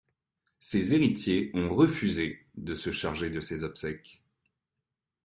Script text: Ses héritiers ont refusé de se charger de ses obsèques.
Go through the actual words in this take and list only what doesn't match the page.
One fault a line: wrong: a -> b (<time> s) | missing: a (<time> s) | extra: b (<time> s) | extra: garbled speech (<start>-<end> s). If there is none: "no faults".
no faults